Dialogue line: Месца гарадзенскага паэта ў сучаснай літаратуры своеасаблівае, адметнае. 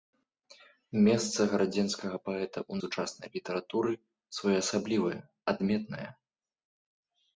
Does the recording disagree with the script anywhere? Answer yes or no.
no